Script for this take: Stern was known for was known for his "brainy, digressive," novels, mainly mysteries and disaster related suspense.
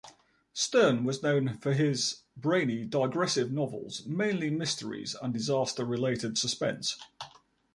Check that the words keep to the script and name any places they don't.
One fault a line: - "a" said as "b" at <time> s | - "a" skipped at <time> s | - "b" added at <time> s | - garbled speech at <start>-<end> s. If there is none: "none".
- "was known for" skipped at 1.7 s